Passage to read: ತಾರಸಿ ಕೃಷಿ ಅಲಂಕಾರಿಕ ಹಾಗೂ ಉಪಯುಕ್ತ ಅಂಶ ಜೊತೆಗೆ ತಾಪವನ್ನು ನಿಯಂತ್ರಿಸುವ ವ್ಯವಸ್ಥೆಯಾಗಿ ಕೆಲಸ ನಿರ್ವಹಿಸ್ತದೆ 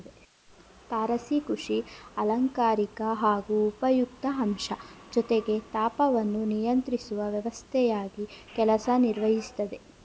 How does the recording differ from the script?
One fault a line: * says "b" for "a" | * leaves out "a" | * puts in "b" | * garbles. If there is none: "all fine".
all fine